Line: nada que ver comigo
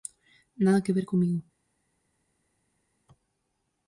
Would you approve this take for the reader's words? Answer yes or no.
yes